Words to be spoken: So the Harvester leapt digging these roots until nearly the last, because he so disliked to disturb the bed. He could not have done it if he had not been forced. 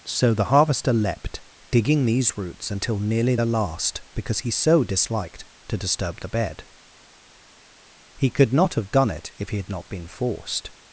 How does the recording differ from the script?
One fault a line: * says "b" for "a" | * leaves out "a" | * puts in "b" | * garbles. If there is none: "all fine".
all fine